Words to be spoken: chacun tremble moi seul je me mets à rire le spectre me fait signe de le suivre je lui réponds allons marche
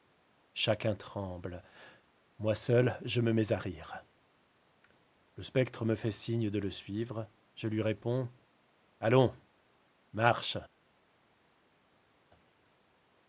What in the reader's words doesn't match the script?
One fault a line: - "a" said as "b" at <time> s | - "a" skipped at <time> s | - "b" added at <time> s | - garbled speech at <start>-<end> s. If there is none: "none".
none